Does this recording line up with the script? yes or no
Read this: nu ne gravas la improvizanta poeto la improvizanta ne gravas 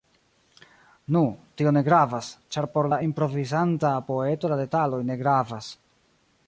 no